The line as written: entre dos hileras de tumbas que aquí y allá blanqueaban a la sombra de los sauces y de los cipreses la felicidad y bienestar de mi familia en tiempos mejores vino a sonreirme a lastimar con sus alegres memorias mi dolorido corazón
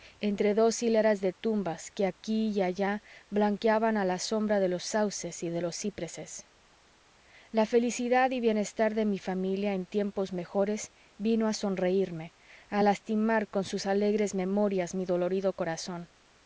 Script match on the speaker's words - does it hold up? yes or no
yes